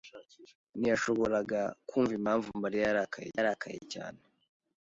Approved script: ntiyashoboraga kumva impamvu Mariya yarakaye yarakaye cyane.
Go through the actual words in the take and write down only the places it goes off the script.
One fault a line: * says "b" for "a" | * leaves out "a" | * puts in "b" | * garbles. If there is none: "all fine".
all fine